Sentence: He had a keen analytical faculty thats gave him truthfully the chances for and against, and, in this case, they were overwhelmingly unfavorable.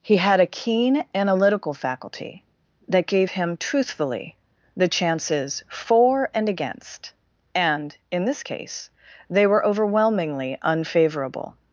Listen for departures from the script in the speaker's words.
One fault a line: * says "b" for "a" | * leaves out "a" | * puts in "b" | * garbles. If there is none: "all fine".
* says "that" for "thats"